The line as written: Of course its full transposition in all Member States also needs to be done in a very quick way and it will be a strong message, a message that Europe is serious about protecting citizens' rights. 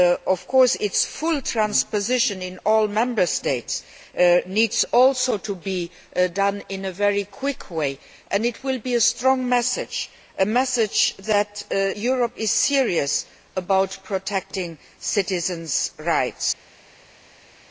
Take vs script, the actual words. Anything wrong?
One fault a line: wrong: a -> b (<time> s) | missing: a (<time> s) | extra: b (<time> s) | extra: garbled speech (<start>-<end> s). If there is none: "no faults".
no faults